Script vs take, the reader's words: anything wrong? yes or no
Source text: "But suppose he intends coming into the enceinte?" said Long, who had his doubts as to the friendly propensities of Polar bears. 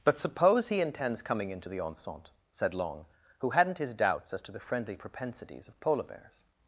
yes